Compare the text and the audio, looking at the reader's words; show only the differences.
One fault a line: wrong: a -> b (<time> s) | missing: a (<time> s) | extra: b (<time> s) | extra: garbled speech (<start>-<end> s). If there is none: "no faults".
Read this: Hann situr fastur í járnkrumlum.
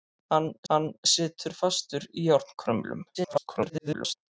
extra: hann (0.7 s)
extra: garbled speech (3.1-4.2 s)